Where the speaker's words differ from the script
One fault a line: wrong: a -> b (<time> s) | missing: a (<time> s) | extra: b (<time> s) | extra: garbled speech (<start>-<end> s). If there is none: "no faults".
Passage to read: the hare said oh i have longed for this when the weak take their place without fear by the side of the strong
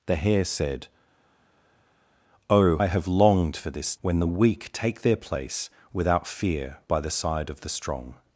no faults